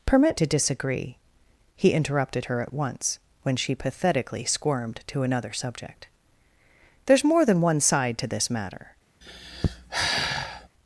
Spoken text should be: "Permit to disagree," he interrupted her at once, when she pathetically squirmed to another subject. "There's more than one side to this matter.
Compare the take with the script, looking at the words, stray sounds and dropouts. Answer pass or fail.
fail